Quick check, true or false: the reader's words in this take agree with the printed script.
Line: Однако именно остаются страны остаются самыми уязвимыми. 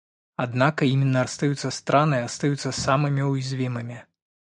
true